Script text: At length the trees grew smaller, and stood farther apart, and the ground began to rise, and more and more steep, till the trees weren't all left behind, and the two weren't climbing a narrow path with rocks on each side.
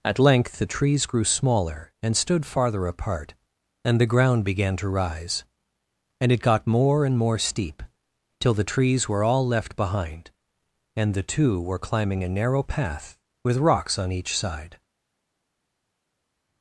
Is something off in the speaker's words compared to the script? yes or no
yes